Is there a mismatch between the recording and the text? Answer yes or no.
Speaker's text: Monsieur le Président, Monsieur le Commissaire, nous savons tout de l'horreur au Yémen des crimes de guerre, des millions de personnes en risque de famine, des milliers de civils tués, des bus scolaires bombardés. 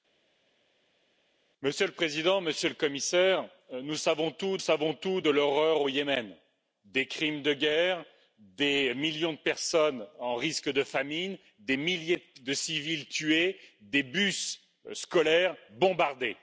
yes